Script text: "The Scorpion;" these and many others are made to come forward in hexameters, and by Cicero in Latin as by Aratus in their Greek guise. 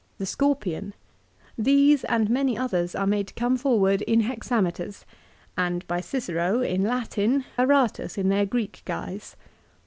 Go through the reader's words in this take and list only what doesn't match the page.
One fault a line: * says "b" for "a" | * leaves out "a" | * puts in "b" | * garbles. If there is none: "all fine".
* leaves out "as by"